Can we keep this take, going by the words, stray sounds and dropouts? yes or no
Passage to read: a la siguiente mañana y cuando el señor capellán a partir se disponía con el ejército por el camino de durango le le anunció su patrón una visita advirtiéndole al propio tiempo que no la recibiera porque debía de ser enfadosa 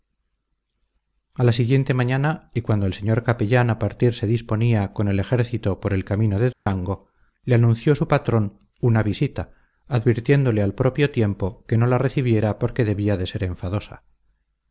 no